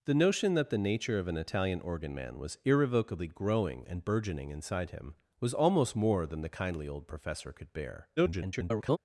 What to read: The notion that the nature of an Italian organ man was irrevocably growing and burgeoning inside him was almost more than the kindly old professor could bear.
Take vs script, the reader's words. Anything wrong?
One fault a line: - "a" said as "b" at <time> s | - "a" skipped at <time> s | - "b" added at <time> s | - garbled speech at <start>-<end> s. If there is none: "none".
- garbled speech at 8.2-9.0 s